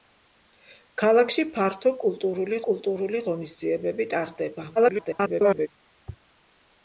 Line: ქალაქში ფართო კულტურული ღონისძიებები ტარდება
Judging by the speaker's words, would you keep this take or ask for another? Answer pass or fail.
fail